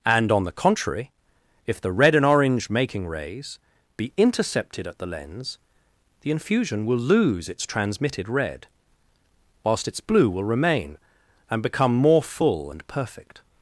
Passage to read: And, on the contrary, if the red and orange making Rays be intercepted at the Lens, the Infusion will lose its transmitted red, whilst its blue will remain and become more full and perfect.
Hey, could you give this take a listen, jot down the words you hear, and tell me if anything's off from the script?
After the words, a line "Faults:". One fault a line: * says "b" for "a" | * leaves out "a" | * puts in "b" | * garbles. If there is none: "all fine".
And, on the contrary, if the red and orange making Rays be intercepted at the Lens, the Infusion will lose its transmitted red, whilst its blue will remain and become more full and perfect.
Faults:
all fine